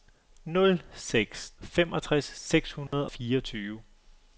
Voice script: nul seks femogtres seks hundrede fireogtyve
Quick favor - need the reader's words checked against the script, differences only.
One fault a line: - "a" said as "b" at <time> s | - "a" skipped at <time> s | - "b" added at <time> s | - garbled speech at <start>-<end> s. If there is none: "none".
none